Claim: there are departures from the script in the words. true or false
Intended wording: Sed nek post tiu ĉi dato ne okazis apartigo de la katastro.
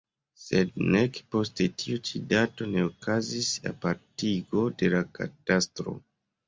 false